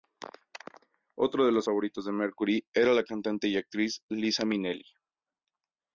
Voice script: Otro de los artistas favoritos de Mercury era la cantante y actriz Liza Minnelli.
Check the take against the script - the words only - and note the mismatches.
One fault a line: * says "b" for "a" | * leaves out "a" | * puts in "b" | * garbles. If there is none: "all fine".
* leaves out "artistas"